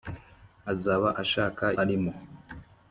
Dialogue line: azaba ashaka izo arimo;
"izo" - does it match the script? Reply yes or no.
no